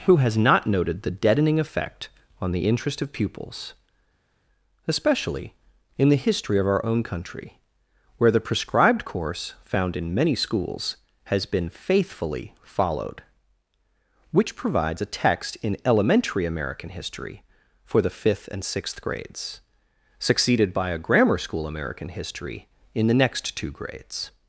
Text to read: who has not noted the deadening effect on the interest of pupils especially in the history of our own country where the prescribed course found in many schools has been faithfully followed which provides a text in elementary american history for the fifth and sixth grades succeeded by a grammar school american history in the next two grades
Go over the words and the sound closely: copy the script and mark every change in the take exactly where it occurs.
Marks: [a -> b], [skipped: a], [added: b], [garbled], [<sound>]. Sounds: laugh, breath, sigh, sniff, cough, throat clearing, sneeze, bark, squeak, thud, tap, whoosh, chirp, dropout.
who has not noted the deadening effect on the interest of pupils especially in the history of our own country where the prescribed course found in many schools has been faithfully followed which provides a text in elementary american history for the fifth and sixth grades succeeded by a grammar school american history in the next two grades